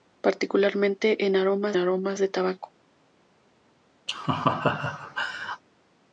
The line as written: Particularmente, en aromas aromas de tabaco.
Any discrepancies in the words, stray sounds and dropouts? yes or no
yes